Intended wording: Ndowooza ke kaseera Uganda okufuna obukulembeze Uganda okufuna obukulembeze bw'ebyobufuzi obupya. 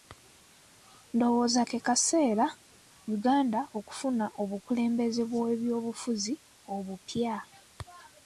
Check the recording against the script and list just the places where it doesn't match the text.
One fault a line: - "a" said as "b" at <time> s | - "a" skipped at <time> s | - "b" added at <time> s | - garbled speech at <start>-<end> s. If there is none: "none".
- "Uganda okufuna obukulembeze" skipped at 5.2 s